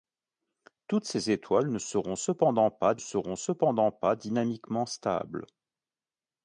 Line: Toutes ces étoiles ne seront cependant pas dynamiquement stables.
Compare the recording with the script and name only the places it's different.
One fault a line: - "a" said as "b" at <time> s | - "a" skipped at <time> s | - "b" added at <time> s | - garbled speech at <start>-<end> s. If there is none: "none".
- "seront cependant pas" added at 3.0 s